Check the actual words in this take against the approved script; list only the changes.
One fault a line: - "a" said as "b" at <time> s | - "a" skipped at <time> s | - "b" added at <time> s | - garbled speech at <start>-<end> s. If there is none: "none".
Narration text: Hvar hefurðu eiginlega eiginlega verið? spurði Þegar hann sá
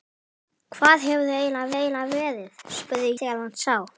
none